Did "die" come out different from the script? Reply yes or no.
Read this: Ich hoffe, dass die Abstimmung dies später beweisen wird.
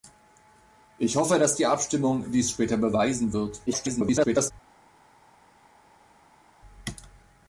no